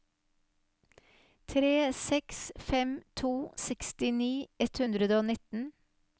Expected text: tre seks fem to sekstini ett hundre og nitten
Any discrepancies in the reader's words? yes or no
no